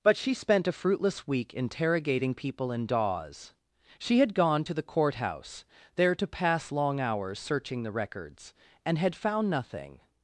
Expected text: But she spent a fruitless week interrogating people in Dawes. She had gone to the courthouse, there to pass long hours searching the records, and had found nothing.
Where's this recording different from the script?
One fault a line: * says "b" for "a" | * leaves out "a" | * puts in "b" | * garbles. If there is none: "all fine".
all fine